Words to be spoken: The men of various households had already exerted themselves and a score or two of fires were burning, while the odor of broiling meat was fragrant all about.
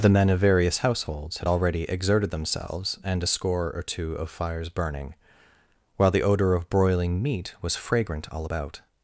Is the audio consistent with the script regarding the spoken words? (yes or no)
no